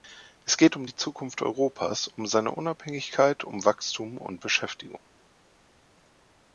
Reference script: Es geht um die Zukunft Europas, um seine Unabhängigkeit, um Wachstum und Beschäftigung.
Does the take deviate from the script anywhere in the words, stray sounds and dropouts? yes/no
no